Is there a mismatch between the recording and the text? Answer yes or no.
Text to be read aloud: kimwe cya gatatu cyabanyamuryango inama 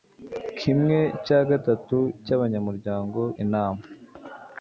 no